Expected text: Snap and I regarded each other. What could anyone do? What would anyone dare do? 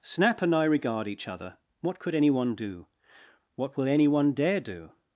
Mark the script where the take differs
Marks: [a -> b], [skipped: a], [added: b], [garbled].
Snap and I [regarded -> regard] each other. What could anyone do? What [would -> will] anyone dare do?